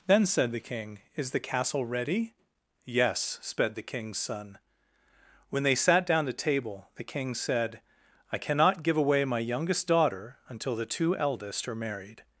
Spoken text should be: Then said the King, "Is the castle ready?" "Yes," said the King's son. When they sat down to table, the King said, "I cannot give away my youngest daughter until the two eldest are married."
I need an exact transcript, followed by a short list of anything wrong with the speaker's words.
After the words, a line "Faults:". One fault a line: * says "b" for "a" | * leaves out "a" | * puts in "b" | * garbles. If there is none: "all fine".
Then said the King, "Is the castle ready?" "Yes," sped the King's son. When they sat down to table, the King said, "I cannot give away my youngest daughter until the two eldest are married."
Faults:
* says "sped" for "said"